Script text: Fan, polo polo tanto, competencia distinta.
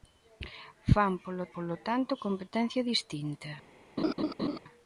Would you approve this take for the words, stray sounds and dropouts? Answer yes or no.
no